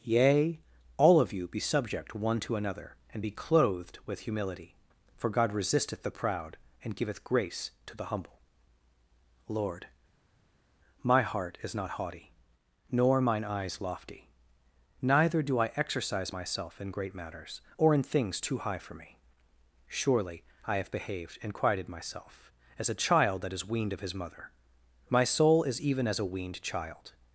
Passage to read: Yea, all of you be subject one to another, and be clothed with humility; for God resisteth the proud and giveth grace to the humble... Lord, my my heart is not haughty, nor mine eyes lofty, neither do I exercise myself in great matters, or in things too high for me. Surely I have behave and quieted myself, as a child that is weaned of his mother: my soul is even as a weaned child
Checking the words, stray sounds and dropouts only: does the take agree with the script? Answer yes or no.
no